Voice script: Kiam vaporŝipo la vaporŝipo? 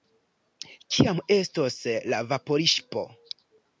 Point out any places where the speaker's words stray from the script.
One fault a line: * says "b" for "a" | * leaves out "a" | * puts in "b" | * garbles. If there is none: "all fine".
* says "estos" for "vaporŝipo"